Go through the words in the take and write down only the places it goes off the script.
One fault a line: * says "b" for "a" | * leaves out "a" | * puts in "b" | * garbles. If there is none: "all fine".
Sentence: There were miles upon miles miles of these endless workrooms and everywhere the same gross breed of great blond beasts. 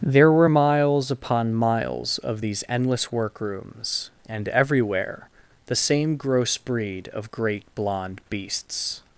* leaves out "miles"